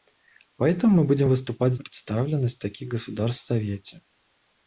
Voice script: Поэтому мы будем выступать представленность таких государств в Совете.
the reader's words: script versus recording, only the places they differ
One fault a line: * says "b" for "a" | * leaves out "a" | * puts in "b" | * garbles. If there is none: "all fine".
all fine